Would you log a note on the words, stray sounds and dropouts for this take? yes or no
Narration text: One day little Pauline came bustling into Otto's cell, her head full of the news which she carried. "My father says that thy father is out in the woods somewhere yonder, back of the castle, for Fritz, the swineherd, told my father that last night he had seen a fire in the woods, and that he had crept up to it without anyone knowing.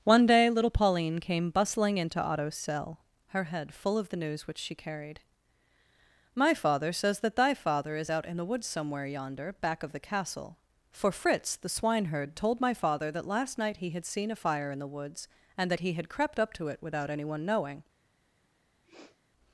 yes